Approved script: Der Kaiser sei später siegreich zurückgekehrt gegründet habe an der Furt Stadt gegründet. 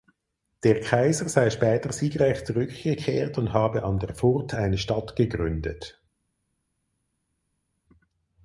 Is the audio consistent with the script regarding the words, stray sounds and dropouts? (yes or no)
no